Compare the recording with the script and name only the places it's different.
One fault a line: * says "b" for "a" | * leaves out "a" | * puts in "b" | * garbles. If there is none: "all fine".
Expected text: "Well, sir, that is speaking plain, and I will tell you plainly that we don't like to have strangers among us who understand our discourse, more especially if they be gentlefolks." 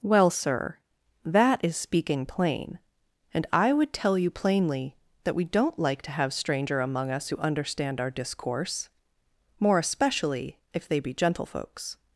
* says "would" for "will"
* says "stranger" for "strangers"